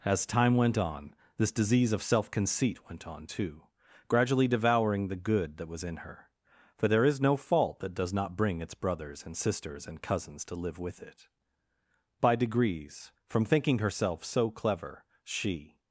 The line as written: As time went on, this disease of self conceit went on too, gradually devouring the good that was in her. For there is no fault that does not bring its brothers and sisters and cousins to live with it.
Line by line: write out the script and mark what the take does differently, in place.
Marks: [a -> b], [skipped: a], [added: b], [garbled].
As time went on, this disease of self conceit went on too, gradually devouring the good that was in her. For there is no fault that does not bring its brothers and sisters and cousins to live with it. [added: By degrees from thinking herself so clever she]